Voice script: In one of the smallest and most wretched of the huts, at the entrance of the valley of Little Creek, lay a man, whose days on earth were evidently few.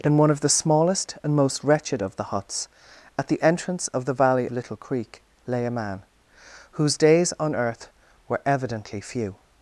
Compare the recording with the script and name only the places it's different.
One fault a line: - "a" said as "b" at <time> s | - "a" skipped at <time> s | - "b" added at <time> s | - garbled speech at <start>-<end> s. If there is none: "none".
- "of" skipped at 4.5 s